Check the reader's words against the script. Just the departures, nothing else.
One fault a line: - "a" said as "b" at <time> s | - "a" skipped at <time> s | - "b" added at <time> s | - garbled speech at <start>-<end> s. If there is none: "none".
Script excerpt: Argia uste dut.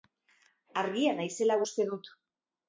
- "naizela" added at 1.2 s